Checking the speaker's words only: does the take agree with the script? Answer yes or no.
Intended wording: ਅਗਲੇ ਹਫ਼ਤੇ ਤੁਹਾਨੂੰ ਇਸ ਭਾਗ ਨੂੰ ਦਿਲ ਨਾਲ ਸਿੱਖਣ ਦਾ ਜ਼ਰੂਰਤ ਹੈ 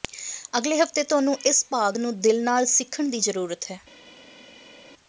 no